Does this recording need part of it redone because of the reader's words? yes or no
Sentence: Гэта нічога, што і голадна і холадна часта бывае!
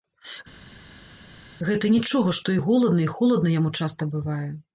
yes